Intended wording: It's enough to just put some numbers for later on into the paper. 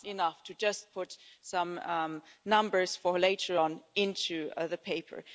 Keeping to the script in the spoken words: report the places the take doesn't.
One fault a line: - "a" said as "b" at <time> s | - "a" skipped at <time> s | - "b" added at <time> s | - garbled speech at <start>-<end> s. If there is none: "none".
none